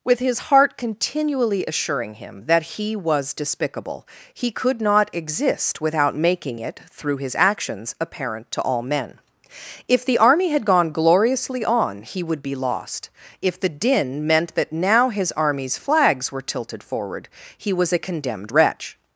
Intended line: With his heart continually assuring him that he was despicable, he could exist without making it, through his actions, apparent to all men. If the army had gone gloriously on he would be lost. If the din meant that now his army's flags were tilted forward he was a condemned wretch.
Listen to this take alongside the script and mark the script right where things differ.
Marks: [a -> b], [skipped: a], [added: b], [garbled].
With his heart continually assuring him that he was despicable, he could [added: not] exist without making it, through his actions, apparent to all men. If the army had gone gloriously on he would be lost. If the din meant that now his army's flags were tilted forward he was a condemned wretch.